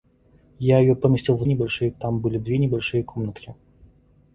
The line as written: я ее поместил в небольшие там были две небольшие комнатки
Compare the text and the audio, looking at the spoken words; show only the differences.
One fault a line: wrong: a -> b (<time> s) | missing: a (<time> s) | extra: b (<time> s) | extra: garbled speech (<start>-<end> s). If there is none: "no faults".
no faults